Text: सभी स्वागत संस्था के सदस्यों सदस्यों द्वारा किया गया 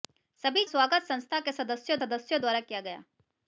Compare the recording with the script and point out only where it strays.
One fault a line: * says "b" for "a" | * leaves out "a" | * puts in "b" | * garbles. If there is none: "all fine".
all fine